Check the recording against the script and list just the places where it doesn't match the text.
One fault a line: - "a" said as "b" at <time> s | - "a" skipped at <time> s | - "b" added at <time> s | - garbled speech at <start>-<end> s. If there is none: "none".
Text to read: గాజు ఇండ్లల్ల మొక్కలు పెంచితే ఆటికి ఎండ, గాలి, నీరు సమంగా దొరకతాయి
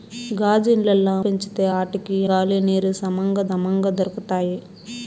- "మొక్కలు" skipped at 1.1 s
- "ఎండ" skipped at 2.2 s
- "సమంగా" added at 3.5 s